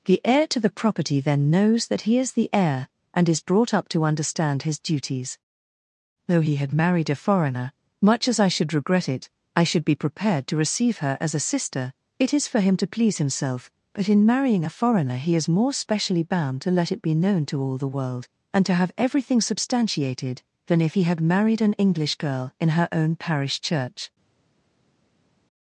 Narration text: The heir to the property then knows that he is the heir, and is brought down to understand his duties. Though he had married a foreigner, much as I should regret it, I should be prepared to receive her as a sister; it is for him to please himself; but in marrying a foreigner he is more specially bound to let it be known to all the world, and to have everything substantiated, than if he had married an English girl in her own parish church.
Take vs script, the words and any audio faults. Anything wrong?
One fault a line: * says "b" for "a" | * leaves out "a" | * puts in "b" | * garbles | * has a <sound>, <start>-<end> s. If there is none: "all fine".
* says "up" for "down"